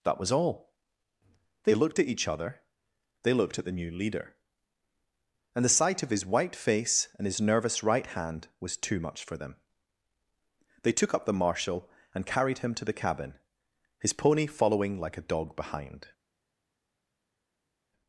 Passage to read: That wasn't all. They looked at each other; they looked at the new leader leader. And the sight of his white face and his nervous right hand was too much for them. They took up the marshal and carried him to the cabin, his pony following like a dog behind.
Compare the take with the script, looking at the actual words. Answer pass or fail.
fail